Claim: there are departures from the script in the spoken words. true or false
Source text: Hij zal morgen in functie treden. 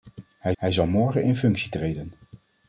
true